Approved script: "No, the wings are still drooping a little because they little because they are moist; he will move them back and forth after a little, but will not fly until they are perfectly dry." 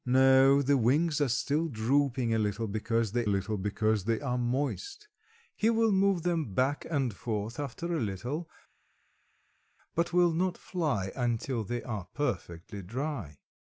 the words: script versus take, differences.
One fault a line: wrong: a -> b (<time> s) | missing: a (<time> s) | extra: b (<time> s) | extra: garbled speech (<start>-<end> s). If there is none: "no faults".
no faults